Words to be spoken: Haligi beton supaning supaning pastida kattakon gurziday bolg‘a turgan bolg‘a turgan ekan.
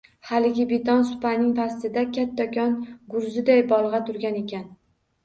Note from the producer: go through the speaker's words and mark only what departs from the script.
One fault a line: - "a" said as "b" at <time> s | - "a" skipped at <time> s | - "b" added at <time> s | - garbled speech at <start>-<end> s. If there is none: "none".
- "supaning" skipped at 1.5 s
- "bolg‘a turgan" skipped at 4.4 s